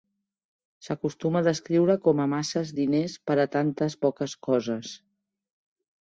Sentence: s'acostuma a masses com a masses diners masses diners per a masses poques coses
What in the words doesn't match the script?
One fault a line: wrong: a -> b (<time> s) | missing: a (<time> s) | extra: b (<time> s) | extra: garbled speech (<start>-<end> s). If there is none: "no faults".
wrong: masses -> descriure (1.5 s)
missing: masses diners (3.2 s)
wrong: masses -> tantes (3.6 s)